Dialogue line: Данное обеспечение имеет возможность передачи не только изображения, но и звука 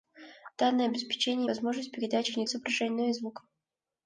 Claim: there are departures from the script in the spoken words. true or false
true